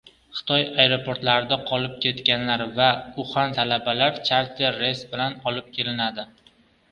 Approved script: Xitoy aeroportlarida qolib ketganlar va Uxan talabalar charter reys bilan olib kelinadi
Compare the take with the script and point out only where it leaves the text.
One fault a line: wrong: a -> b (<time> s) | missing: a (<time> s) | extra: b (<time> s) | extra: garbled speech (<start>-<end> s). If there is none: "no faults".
no faults